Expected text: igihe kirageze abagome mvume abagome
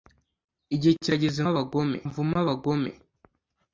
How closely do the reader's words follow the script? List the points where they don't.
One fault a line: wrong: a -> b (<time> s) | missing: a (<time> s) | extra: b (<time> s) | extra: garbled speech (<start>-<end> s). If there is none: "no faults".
no faults